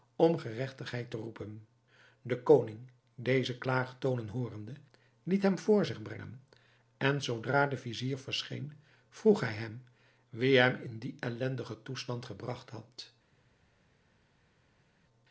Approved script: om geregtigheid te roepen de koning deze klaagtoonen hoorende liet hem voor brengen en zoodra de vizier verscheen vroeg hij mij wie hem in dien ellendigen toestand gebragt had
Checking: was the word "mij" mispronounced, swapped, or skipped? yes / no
yes